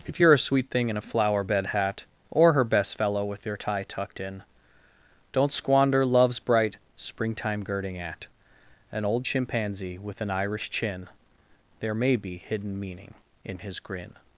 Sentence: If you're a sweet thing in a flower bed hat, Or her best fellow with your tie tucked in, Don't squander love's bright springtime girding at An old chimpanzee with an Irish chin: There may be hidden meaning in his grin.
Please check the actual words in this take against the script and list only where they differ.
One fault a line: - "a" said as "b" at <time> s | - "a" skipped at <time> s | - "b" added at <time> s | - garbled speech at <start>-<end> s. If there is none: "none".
none